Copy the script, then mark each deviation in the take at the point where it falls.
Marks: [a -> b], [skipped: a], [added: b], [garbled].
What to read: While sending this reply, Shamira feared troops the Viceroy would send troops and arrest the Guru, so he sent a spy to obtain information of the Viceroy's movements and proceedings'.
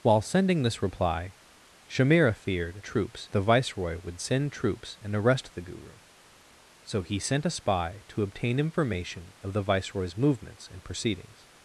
While sending this reply, Shamira feared troops the Viceroy would send troops and arrest the Guru, so he sent a spy to obtain information of the Viceroy's movements and proceedings'.